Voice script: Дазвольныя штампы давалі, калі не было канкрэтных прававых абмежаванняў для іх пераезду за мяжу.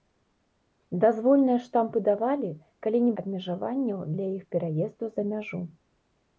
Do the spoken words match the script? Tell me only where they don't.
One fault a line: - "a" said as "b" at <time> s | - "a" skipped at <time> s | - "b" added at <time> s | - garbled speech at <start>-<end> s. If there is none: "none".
- "было канкрэтных прававых" skipped at 3.1 s